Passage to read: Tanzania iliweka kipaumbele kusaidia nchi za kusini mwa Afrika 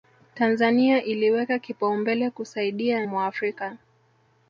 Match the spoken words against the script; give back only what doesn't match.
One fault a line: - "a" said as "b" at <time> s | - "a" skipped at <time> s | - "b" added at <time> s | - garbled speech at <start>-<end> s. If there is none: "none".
- "nchi za kusini" skipped at 3.0 s